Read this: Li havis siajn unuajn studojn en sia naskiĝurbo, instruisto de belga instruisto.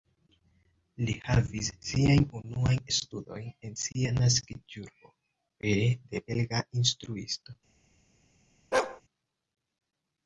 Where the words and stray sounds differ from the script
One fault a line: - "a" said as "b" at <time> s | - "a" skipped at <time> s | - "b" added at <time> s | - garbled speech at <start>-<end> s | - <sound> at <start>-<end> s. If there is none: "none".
- "instruisto" said as "pere" at 5.6 s
- bark at 8.7-9.0 s